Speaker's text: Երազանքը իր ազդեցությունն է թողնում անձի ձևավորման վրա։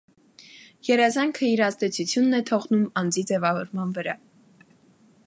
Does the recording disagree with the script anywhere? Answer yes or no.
no